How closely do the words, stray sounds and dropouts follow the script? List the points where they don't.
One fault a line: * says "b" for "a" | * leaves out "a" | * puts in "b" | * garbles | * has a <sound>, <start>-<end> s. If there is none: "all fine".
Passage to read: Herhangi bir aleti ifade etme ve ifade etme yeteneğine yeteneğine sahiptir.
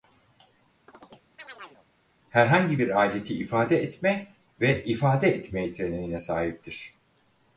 * has a chirp, 0.9-1.9 s
* leaves out "yeteneğine"